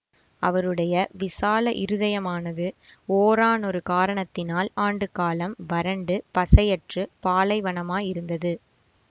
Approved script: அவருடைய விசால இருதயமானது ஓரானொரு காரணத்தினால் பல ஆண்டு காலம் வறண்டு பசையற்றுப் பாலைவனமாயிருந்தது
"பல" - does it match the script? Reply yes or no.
no